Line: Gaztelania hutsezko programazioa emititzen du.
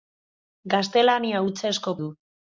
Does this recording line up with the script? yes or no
no